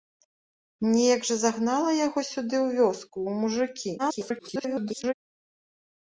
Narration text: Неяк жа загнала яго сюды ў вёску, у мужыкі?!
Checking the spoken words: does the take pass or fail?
fail